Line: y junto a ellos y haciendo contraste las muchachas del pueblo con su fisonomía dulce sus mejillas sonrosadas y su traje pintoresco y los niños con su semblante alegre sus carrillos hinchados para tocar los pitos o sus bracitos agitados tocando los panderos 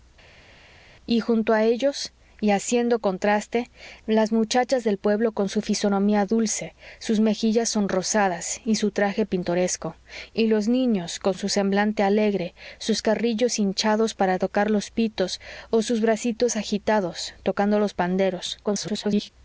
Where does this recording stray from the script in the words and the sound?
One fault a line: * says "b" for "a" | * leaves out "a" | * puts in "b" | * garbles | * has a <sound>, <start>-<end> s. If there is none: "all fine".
* garbles